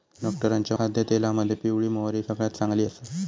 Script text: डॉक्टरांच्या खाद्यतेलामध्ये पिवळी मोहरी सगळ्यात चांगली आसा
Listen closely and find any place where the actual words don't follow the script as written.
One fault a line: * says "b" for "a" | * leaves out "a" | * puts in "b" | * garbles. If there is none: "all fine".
all fine